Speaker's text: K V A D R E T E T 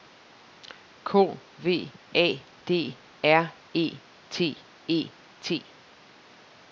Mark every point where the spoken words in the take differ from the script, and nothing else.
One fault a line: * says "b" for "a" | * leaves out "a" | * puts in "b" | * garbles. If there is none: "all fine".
all fine